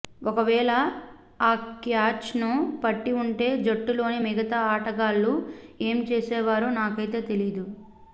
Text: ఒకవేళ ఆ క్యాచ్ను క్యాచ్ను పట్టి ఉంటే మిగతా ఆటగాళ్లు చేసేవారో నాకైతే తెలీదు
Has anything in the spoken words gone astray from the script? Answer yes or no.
yes